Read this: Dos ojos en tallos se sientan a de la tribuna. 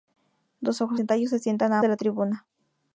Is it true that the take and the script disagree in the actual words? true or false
false